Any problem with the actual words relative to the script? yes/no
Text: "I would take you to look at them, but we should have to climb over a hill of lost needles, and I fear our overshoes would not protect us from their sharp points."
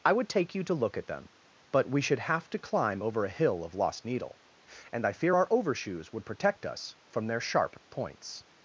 yes